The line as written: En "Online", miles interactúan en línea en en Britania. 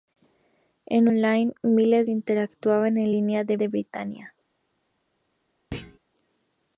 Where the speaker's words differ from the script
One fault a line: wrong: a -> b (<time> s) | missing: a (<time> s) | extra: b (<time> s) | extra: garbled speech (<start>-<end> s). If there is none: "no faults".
no faults